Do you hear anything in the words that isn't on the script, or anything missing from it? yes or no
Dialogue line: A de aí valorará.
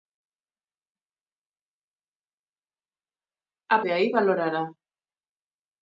no